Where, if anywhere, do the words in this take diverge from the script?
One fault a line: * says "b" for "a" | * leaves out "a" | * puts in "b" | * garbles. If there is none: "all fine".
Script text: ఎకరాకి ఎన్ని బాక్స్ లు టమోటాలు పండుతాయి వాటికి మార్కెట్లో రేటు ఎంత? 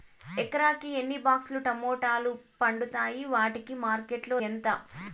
* leaves out "రేటు"